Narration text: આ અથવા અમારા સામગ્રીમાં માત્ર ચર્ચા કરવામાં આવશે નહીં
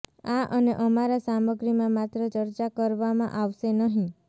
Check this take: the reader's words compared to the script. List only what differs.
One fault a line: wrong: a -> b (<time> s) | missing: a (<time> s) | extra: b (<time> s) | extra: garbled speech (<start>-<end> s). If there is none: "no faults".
wrong: અથવા -> અને (0.5 s)